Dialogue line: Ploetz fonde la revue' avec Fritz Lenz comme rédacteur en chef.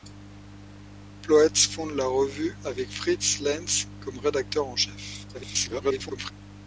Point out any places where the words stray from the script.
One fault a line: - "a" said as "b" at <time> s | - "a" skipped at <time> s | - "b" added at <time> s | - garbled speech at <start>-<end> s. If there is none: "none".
- garbled speech at 5.3-6.3 s